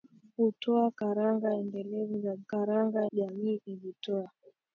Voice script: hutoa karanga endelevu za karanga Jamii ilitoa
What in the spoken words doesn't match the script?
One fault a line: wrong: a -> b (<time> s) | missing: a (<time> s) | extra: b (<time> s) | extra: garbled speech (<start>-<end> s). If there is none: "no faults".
no faults